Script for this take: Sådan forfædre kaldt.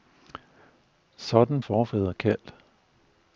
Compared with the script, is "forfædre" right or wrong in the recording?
right